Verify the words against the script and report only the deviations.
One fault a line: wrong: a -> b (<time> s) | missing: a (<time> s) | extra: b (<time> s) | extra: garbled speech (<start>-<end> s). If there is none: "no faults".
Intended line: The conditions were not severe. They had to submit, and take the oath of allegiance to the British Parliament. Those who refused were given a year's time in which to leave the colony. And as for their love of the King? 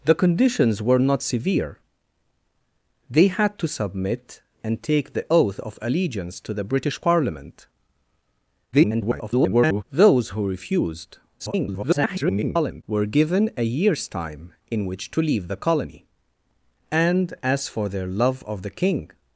extra: garbled speech (8.7-9.8 s)
extra: garbled speech (11.4-12.8 s)